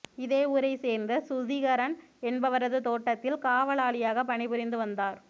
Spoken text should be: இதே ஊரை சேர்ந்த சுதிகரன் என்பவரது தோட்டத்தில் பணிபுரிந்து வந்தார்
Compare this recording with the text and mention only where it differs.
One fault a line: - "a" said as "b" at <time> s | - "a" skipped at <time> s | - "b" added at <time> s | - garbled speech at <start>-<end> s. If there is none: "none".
- "காவலாளியாக" added at 3.4 s